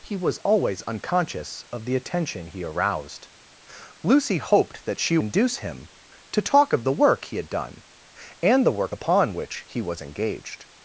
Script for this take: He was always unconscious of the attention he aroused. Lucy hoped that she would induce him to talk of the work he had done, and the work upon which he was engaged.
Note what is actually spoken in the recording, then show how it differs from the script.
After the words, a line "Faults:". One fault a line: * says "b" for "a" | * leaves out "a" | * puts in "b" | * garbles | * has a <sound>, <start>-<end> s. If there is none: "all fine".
He was always unconscious of the attention he aroused. Lucy hoped that she induce him to talk of the work he had done, and the work upon which he was engaged.
Faults:
* leaves out "would"